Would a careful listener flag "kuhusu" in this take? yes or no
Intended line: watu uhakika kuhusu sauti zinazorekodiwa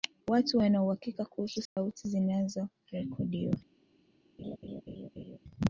no